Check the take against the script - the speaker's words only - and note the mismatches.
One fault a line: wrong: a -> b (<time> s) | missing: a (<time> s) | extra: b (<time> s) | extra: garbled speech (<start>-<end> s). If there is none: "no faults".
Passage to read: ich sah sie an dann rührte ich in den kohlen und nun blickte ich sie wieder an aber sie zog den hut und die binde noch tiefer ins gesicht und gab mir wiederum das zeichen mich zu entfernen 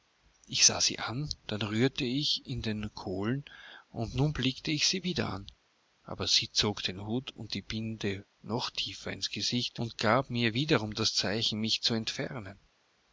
no faults